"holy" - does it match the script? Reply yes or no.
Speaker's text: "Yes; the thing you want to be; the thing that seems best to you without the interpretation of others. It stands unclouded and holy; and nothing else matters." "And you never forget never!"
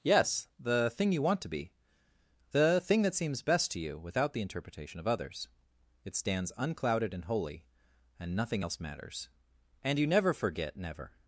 yes